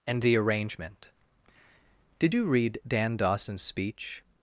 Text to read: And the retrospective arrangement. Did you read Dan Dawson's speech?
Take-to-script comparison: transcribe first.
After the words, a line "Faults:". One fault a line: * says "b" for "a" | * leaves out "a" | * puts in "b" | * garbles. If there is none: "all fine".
And the arrangement. Did you read Dan Dawson's speech?
Faults:
* leaves out "retrospective"